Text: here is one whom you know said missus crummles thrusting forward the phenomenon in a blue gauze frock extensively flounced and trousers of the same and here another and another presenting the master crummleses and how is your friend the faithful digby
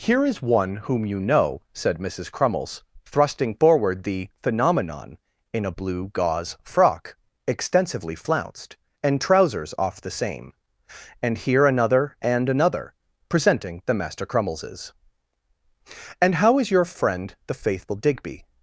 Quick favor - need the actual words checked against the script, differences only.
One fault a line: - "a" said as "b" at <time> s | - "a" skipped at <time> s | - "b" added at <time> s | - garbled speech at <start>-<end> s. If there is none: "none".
- "of" said as "off" at 9.8 s